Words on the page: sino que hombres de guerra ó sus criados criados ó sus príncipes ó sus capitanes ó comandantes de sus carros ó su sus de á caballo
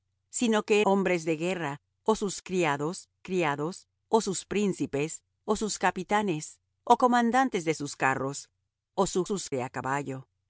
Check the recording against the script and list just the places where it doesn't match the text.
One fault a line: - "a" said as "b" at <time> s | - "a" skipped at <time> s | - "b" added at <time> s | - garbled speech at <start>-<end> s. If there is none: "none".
none